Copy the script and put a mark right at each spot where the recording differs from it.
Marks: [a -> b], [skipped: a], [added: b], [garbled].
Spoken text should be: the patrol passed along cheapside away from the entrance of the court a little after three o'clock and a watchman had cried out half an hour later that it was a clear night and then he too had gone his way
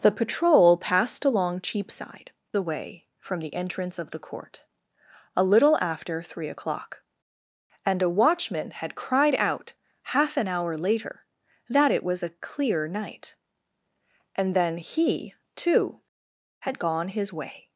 the patrol passed along cheapside away from the entrance of the court a little after three o'clock and a watchman had cried out half an hour later that it was a clear night and then he too had gone his way